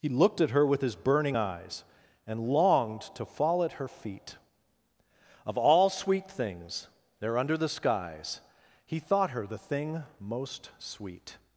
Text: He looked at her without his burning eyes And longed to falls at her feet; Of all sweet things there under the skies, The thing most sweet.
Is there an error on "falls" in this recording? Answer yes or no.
yes